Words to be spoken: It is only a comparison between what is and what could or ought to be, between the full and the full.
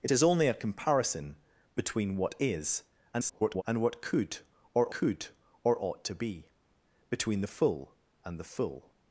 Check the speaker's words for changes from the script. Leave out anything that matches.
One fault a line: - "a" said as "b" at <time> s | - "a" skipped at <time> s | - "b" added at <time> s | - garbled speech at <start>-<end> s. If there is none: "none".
- garbled speech at 3.1-3.6 s
- "could or" added at 4.9 s